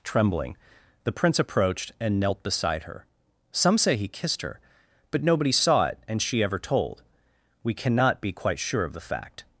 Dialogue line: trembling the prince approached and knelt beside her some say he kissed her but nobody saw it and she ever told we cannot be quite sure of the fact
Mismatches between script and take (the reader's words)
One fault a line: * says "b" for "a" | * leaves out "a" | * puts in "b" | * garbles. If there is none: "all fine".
all fine